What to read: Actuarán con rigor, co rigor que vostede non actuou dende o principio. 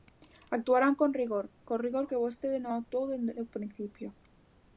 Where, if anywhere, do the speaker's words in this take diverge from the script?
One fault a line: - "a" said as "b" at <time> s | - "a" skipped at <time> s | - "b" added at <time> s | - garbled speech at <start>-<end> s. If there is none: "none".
none